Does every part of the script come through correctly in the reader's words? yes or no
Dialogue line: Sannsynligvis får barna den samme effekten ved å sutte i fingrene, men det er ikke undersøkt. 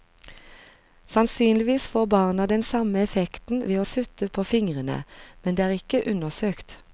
no